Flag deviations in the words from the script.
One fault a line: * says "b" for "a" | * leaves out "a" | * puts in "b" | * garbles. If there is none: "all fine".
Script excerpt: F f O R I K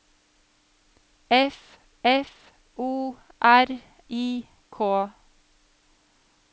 all fine